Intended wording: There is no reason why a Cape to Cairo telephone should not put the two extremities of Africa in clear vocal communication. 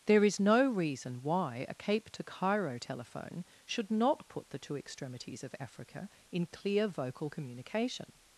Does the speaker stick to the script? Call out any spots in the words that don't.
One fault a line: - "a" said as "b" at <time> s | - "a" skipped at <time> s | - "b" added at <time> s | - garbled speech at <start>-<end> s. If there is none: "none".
none